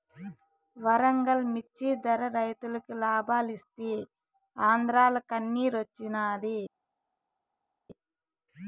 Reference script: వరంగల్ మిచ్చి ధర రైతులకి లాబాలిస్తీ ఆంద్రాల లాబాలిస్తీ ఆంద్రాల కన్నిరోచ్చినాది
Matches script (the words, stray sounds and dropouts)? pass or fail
fail